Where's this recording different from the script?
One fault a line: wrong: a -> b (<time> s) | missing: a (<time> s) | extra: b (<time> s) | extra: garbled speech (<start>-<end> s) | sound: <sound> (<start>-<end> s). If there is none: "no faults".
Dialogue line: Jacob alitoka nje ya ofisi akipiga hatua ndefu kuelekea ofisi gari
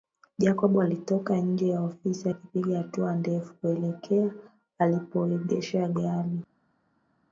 wrong: ofisi -> alipoegesha (4.8 s)